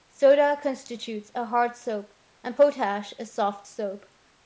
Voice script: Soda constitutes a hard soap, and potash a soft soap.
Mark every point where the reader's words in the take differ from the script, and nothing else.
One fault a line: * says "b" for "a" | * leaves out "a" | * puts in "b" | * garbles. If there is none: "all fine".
all fine